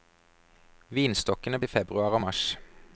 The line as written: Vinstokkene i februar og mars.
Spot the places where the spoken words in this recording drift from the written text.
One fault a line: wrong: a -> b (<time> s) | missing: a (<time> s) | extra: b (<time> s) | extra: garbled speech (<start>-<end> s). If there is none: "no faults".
no faults